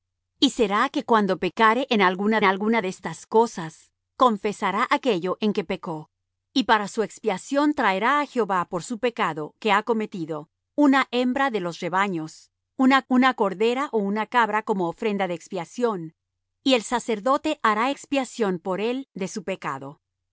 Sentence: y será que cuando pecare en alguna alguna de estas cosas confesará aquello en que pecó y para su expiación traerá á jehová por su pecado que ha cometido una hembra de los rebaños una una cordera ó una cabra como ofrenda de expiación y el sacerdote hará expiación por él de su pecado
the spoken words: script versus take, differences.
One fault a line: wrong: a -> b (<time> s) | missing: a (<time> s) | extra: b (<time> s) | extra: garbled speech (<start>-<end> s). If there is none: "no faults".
no faults